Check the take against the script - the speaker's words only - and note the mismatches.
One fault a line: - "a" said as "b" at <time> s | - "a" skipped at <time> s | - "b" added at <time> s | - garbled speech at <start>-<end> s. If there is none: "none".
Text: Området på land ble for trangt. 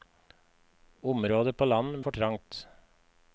- "ble" skipped at 2.0 s